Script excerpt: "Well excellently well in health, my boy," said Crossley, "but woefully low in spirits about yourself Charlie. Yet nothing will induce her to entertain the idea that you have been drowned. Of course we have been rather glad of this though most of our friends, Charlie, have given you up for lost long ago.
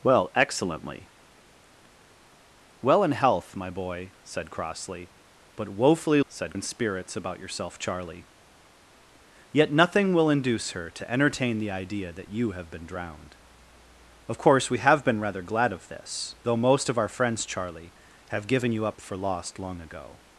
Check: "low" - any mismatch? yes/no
yes